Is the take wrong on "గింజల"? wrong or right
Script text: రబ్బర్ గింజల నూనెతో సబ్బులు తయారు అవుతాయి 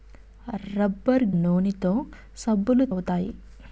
wrong